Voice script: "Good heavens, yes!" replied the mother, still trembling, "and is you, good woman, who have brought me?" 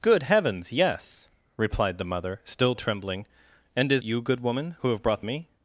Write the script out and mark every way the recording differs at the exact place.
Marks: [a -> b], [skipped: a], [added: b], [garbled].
"Good heavens, yes!" replied the mother, still trembling, "and is you, good woman, who have brought me?"